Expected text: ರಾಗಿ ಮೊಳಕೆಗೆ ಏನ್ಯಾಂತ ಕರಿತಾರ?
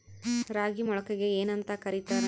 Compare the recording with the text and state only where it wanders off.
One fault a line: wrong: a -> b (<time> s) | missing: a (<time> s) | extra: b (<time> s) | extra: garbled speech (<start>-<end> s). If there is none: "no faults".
no faults